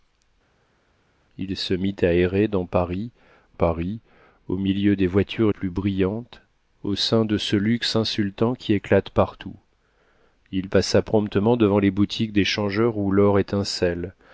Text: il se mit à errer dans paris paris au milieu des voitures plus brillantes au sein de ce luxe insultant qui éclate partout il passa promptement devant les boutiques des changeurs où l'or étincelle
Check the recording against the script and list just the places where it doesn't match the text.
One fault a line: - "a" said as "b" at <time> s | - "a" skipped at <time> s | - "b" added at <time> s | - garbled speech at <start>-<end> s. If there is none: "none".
none